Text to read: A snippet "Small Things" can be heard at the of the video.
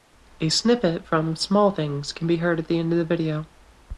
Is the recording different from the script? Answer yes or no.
yes